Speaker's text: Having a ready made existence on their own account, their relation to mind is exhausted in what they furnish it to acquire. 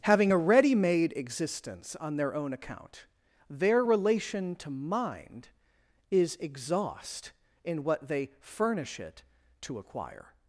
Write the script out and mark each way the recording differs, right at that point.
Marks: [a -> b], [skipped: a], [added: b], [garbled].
Having a ready made existence on their own account, their relation to mind is [exhausted -> exhaust] in what they furnish it to acquire.